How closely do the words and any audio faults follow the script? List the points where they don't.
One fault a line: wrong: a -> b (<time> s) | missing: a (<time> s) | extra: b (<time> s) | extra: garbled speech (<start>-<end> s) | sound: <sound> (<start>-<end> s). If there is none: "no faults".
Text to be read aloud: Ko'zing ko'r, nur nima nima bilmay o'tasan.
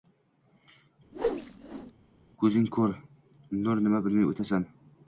sound: whoosh (1.1-1.9 s)
missing: nima (4.0 s)